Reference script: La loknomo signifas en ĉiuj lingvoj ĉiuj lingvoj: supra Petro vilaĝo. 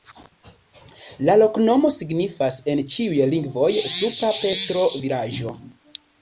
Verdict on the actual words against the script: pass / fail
fail